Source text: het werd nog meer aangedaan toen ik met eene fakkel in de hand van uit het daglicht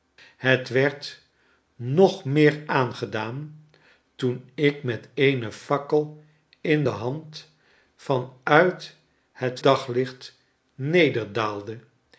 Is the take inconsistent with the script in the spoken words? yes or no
no